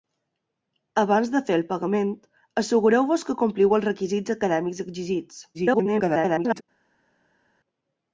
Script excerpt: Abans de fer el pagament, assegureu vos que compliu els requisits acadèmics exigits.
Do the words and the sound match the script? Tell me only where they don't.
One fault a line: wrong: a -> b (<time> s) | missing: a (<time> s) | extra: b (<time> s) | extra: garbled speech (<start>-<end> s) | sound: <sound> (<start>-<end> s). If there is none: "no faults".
extra: garbled speech (5.5-6.6 s)